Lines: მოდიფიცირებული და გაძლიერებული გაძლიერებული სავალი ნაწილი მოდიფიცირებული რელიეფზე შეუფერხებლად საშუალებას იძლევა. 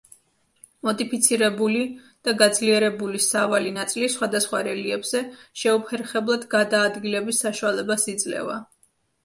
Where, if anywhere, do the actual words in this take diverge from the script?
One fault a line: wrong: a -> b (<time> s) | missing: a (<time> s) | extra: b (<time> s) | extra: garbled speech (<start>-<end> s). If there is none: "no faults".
missing: გაძლიერებული (3.2 s)
wrong: მოდიფიცირებული -> სხვადასხვა (4.2 s)
extra: გადაადგილების (6.6 s)